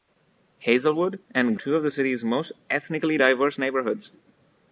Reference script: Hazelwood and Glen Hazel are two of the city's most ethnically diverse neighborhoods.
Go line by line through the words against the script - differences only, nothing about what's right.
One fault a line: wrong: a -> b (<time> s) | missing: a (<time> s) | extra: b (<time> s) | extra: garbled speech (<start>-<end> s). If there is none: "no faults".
missing: Glen Hazel are (1.6 s)